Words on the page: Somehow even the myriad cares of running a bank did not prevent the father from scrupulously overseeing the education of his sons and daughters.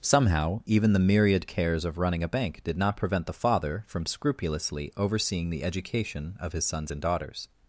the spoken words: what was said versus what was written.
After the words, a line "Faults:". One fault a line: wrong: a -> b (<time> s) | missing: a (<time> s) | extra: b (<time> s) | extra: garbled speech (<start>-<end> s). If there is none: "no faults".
Somehow even the myriad cares of running a bank did not prevent the father from scrupulously overseeing the education of his sons and daughters.
Faults:
no faults